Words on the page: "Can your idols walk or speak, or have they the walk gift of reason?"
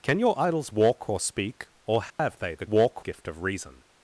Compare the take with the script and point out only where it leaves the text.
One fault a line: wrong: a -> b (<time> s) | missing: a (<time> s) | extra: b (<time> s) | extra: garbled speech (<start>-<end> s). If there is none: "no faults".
no faults